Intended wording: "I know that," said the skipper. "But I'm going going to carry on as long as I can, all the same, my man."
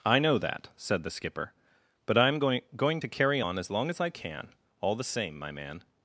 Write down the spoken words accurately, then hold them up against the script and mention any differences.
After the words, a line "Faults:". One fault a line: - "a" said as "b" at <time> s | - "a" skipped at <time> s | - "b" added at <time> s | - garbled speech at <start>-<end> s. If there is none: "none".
"I know that," said the skipper. "But I'm going going to carry on as long as I can, all the same, my man."
Faults:
none